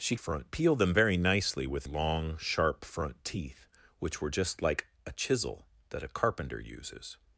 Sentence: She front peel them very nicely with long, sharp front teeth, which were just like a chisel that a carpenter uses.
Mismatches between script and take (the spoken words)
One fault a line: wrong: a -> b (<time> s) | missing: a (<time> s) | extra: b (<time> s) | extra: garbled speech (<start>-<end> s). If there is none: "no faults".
no faults